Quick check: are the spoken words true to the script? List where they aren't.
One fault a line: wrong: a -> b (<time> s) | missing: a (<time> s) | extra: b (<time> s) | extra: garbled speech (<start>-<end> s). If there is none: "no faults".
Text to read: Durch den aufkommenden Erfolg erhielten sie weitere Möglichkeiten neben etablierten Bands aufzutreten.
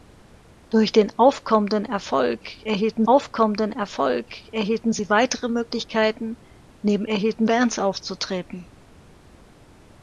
extra: aufkommenden Erfolg erhielten (3.1 s)
wrong: etablierten -> erhielten (7.1 s)